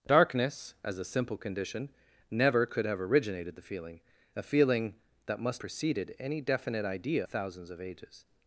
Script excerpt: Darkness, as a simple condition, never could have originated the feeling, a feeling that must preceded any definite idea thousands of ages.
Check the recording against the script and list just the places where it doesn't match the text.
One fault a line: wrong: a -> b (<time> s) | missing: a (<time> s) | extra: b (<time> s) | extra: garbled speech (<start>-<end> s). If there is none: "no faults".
no faults